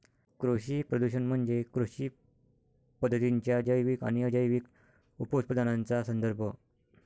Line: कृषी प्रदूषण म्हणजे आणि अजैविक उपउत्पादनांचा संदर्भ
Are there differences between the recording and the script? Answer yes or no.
yes